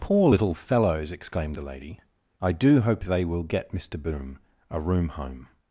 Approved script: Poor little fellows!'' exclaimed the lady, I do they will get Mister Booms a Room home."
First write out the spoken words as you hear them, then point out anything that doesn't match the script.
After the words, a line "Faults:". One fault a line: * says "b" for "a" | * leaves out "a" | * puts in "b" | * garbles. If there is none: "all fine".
Poor little fellows!'' exclaimed the lady, I do hope they will get Mister Boom a Room home."
Faults:
* puts in "hope"
* says "Boom" for "Booms"